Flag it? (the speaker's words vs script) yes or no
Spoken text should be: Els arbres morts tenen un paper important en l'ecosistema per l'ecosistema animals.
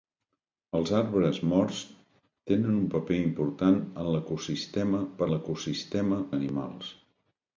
no